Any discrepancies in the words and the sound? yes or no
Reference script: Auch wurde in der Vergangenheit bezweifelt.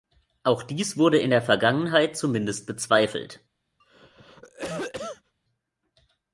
yes